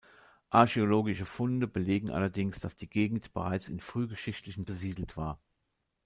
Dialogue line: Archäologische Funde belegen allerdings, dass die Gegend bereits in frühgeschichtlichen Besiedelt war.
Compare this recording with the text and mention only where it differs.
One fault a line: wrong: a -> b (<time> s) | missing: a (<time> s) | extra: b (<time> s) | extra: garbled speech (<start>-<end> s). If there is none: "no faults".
no faults